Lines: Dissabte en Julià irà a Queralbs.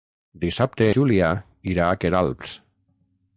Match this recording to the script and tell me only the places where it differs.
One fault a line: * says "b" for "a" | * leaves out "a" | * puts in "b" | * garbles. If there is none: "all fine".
* leaves out "en"